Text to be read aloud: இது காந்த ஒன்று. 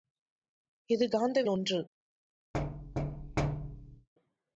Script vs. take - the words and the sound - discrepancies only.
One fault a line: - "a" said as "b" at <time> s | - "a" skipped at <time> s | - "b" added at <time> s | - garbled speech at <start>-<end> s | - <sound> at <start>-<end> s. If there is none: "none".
- thud at 2.5-4.1 s